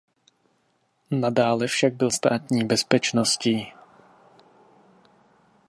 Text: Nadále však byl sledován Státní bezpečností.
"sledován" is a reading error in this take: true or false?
true